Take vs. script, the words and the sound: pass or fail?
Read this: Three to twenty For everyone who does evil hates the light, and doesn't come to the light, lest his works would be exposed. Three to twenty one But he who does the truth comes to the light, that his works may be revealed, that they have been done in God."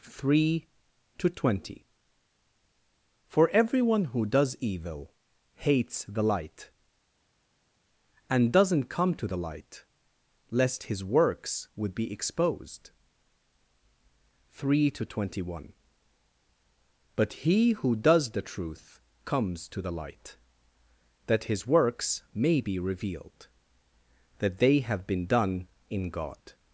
pass